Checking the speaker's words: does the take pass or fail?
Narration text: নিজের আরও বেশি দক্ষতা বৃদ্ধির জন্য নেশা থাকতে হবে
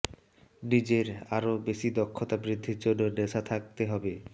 pass